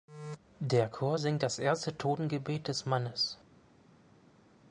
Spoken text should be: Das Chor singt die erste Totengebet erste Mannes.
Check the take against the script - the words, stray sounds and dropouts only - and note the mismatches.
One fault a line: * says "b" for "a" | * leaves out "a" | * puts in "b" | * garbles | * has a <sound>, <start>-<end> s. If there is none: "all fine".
* says "Der" for "Das"
* says "das" for "die"
* says "des" for "erste"